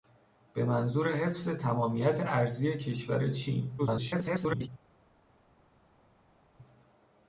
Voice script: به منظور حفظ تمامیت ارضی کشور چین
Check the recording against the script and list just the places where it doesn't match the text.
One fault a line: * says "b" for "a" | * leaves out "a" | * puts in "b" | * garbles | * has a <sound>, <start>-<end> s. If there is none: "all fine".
* garbles